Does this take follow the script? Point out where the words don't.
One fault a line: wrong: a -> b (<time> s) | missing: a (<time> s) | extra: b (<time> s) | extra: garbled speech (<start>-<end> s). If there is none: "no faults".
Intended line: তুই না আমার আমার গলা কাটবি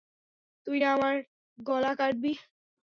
missing: আমার (1.1 s)